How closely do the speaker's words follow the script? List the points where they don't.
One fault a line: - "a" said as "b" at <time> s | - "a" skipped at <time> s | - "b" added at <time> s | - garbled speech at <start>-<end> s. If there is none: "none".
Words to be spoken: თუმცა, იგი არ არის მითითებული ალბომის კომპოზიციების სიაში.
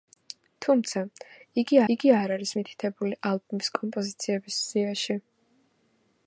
- "იგი" added at 2.0 s